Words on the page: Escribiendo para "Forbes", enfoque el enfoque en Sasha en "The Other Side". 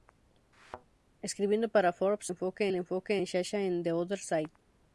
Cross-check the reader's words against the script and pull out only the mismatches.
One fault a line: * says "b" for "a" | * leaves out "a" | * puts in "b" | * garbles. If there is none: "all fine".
all fine